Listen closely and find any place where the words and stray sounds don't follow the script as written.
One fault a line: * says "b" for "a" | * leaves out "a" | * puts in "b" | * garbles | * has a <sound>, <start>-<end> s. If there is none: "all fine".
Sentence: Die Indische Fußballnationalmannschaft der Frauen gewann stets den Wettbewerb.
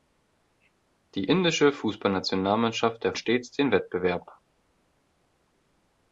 * leaves out "Frauen gewann"